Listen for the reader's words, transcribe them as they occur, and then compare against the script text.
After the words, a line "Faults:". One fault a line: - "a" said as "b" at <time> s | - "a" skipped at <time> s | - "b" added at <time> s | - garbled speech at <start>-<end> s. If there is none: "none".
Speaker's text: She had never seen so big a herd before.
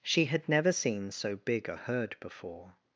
She had never seen so big a herd before.
Faults:
none